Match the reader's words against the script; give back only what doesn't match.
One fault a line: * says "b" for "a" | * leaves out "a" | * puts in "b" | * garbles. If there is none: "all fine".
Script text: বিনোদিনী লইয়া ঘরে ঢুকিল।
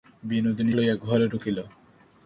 all fine